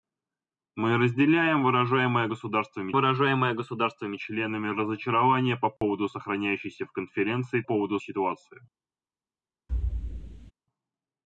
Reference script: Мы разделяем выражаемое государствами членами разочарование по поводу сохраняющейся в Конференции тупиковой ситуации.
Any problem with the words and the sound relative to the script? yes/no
yes